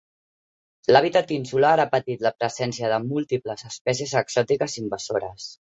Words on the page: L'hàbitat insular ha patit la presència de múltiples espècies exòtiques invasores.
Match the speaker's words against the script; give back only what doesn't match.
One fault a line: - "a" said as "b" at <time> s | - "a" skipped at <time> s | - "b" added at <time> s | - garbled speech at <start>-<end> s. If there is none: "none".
none